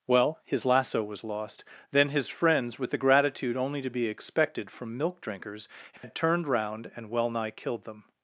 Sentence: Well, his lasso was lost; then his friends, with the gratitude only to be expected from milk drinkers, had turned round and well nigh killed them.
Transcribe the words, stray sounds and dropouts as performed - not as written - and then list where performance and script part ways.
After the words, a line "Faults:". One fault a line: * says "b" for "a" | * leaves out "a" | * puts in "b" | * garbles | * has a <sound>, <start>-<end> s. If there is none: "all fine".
Well, his lasso was lost; then his friends, with the gratitude only to be expected from milk drinkers, had turned round and well nigh killed them.
Faults:
* has a dropout, 6.0-6.0 s